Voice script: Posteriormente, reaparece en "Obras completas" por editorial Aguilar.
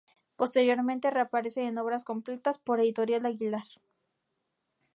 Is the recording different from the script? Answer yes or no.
no